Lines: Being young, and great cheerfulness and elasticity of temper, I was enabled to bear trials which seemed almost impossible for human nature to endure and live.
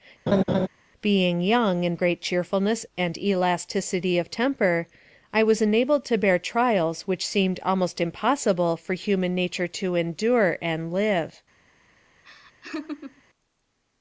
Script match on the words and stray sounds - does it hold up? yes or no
no